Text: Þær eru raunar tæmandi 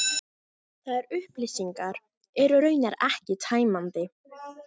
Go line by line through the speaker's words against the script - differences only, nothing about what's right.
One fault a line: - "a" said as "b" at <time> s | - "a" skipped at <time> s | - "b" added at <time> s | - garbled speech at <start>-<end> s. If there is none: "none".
- "upplýsingar" added at 1.2 s
- "ekki" added at 3.1 s